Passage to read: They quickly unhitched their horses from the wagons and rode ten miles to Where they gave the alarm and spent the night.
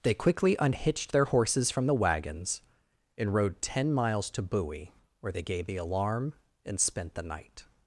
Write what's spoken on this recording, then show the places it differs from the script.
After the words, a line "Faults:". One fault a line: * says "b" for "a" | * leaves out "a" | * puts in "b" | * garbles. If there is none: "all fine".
They quickly unhitched their horses from the wagons and rode ten miles to Bowie where they gave the alarm and spent the night.
Faults:
* puts in "Bowie"